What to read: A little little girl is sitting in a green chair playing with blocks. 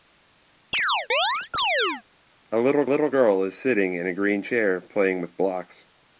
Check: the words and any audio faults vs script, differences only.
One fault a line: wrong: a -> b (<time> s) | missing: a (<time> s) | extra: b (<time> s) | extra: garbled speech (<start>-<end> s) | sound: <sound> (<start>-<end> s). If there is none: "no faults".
sound: chirp (0.7-2.0 s)